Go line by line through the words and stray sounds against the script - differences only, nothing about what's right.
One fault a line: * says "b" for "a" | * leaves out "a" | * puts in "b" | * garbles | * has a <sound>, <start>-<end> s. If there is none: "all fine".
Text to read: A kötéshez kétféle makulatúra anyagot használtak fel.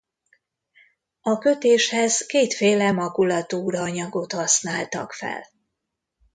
all fine